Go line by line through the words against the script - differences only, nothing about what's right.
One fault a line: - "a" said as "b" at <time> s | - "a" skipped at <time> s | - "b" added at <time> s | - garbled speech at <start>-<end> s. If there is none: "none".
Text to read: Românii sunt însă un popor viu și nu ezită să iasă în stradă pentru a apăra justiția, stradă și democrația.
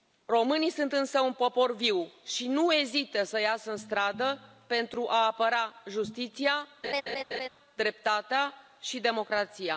- "stradă" said as "dreptatea" at 7.7 s